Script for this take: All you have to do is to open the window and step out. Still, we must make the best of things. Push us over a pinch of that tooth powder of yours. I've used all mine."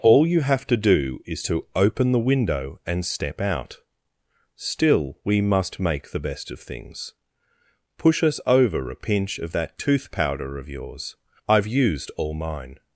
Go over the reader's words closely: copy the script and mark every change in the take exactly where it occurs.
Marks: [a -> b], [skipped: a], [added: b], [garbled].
All you have to do is to open the window and step out. Still, we must make the best of things. Push us over a pinch of that tooth powder of yours. I've used all mine."